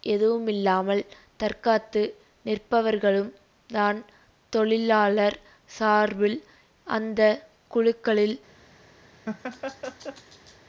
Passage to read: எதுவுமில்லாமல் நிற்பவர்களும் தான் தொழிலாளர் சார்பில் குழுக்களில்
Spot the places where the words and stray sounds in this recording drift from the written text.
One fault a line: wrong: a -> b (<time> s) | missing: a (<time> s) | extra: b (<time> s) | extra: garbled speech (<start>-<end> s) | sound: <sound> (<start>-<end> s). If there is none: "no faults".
extra: தற்காத்து (1.4 s)
extra: அந்த (6.9 s)
sound: laugh (9.3-10.6 s)